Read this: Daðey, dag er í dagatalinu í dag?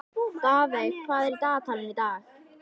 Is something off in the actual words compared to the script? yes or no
yes